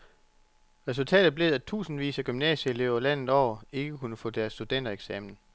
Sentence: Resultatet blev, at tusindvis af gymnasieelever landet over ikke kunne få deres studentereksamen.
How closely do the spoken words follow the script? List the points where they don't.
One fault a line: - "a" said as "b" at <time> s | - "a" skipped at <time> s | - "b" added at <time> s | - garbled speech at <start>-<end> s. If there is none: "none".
none